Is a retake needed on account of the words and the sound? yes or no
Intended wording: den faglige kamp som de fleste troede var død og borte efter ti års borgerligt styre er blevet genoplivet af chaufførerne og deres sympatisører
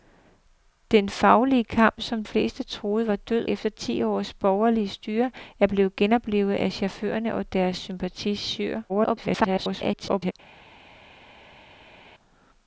yes